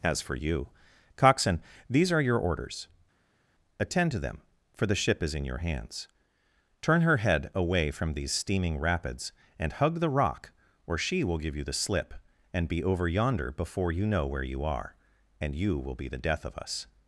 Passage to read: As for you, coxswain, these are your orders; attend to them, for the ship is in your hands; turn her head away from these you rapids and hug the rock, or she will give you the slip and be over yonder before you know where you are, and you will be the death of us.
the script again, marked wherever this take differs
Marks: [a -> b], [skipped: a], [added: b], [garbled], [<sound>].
As for you, coxswain, these are your orders; attend to them, for the ship is in your hands; turn her head away from these [you -> steaming] rapids and hug the rock, or she will give you the slip and be over yonder before you know where you are, and you will be the death of us.